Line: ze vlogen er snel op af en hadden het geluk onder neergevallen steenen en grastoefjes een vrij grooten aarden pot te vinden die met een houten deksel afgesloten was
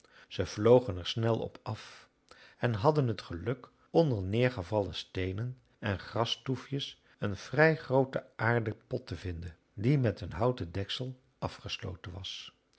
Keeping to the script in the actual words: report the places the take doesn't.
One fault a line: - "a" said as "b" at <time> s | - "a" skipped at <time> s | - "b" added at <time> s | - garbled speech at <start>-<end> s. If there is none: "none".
none